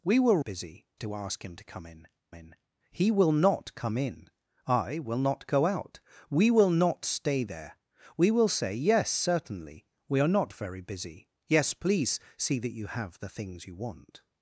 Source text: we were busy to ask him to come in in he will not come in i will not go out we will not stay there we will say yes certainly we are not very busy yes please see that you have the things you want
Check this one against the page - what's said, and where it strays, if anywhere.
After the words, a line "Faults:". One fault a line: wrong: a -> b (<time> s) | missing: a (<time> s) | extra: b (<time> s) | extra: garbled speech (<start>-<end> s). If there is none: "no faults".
we were busy to ask him to come in in he will not come in i will not go out we will not stay there we will say yes certainly we are not very busy yes please see that you have the things you want
Faults:
no faults